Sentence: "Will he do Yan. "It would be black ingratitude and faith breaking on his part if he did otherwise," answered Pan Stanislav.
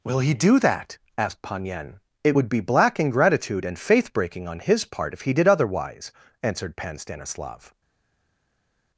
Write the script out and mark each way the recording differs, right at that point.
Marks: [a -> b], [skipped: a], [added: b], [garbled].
"Will he do [added: that asked Pan] Yan. "It would be black ingratitude and faith breaking on his part if he did otherwise," answered Pan Stanislav.